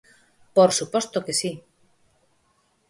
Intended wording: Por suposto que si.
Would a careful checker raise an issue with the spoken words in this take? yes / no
no